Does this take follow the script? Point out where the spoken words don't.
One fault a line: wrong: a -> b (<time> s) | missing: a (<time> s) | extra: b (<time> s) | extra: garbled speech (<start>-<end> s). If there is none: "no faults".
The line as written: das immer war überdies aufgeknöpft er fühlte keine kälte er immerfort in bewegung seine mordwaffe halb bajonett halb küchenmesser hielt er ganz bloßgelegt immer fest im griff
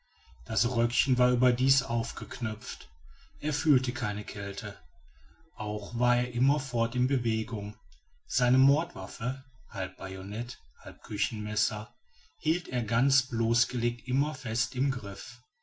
wrong: immer -> röckchen (0.7 s)
extra: auch war (5.5 s)